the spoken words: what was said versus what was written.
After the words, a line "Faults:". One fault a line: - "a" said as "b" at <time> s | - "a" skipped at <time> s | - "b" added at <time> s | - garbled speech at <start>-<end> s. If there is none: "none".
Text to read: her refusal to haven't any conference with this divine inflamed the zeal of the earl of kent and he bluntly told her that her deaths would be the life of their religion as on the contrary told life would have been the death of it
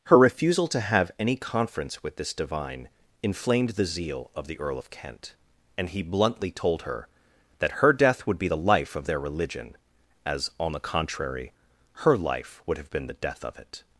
her refusal to have any conference with this divine inflamed the zeal of the earl of kent and he bluntly told her that her death would be the life of their religion as on the contrary her life would have been the death of it
Faults:
- "haven't" said as "have" at 0.8 s
- "deaths" said as "death" at 7.9 s
- "told" said as "her" at 12.0 s